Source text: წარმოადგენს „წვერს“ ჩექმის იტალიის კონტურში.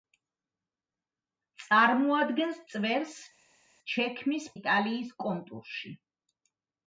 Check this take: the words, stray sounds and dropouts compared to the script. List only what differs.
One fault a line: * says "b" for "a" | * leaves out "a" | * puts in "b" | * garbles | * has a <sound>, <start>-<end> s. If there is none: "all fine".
all fine